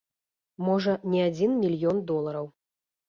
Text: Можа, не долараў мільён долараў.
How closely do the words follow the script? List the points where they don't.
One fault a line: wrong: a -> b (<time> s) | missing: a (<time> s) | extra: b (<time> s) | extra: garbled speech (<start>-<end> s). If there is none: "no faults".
wrong: долараў -> адзін (1.3 s)